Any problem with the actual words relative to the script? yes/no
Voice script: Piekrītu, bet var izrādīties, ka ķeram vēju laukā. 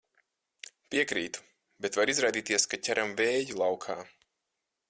no